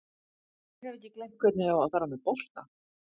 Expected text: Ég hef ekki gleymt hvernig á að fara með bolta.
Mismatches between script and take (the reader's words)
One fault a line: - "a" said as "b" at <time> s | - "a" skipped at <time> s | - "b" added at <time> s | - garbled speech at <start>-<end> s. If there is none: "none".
none